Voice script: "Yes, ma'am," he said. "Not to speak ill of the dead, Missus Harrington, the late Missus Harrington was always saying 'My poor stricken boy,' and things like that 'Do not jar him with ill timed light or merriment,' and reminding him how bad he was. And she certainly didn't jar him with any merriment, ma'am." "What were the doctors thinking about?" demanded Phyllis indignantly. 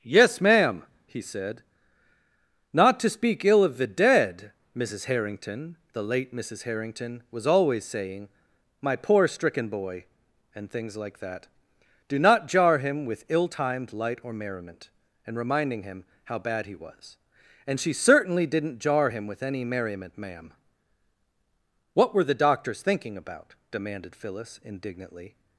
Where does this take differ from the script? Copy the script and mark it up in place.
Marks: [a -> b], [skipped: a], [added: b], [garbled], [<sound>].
"Yes, ma'am," he said. "Not to speak ill of the dead, Missus Harrington, the late Missus Harrington was always saying 'My poor stricken boy,' and things like that 'Do not jar him with ill timed light or merriment,' and reminding him how bad he was. And she certainly didn't jar him with any merriment, ma'am." "What were the doctors thinking about?" demanded Phyllis indignantly.